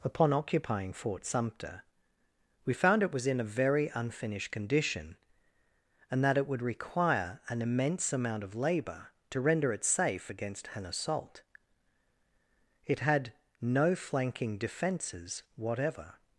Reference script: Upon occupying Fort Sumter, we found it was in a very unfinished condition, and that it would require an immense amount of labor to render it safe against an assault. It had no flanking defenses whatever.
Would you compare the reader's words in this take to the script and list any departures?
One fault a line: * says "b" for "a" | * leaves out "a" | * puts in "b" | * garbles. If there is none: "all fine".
all fine